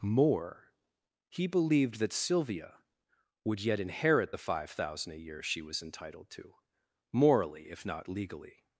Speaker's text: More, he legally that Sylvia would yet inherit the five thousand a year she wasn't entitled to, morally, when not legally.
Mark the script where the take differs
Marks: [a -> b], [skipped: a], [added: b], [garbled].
More, he [legally -> believed] that Sylvia would yet inherit the five thousand a year she [wasn't -> was] entitled to, morally, [when -> if] not legally.